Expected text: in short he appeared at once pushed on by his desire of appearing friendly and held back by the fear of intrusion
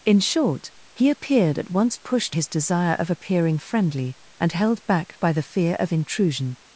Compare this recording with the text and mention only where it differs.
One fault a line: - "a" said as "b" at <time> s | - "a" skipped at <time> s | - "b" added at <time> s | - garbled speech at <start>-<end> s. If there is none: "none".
- "on by" skipped at 2.4 s